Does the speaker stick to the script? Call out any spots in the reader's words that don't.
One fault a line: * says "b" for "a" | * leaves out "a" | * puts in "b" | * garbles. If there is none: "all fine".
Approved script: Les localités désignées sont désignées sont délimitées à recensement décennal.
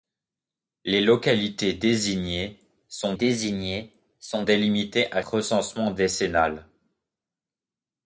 all fine